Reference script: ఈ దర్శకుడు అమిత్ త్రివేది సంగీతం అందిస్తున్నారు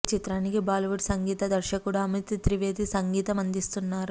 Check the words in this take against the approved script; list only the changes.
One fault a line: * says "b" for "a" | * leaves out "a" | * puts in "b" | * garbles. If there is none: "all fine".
* puts in "చిత్రానికి బాలీవుడ్ సంగీత"